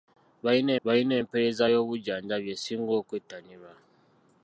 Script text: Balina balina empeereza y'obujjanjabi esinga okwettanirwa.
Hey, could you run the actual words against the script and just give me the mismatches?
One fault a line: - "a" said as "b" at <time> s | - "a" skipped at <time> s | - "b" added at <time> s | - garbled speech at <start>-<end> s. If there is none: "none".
none